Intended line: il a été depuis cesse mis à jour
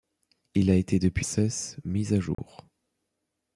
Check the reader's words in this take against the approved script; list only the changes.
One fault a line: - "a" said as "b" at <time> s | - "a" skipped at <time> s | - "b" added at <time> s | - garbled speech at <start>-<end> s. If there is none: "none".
none